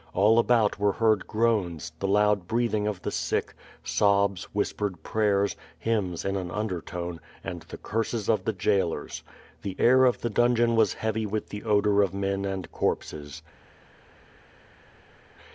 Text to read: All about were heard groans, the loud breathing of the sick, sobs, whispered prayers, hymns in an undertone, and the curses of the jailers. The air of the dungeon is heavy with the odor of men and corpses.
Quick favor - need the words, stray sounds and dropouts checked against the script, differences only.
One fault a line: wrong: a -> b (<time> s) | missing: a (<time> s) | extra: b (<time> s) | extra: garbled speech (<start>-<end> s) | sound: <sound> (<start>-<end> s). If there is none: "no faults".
wrong: is -> was (10.8 s)